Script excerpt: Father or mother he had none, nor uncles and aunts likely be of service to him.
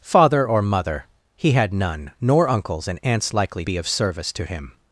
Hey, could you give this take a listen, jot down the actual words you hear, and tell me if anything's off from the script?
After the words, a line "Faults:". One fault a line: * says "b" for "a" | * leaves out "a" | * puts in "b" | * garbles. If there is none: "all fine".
Father or mother he had none, nor uncles and aunts likely be of service to him.
Faults:
all fine